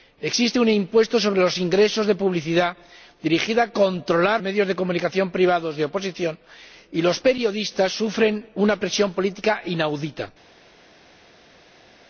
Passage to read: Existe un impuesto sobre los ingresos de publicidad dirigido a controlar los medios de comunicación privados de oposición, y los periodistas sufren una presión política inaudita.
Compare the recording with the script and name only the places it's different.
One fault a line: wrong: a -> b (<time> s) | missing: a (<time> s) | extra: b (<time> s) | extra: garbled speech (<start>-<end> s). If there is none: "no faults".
missing: los (4.4 s)